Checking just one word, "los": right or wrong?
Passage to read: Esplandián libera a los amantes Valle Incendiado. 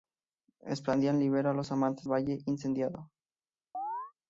right